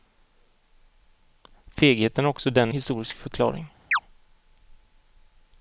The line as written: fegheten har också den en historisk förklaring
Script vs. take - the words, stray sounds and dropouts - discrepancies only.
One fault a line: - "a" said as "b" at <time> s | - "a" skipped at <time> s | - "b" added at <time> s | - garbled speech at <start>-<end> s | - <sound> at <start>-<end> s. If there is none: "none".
- "en" skipped at 2.7 s
- chirp at 3.9-4.0 s